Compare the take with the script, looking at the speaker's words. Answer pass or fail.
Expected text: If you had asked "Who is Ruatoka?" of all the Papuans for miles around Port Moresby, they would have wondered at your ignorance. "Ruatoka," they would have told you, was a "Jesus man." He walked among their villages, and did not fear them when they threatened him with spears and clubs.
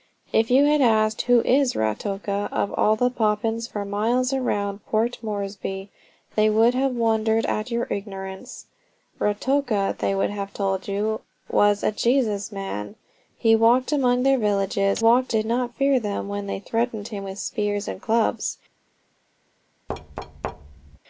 fail